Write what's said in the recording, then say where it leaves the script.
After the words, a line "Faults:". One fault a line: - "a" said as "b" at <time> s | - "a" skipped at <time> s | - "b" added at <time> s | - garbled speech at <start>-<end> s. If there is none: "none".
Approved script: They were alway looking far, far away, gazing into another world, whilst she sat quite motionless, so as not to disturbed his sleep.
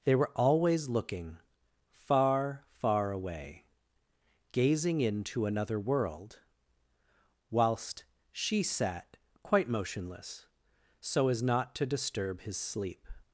They were always looking far, far away, gazing into another world, whilst she sat quite motionless, so as not to disturb his sleep.
Faults:
- "alway" said as "always" at 0.3 s
- "disturbed" said as "disturb" at 11.9 s